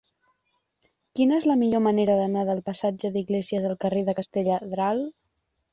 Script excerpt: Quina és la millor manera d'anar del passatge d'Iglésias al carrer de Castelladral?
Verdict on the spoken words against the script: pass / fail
pass